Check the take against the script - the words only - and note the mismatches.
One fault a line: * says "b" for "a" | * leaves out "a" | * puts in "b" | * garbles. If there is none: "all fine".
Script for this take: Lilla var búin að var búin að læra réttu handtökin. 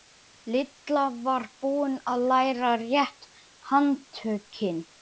* leaves out "var búin að"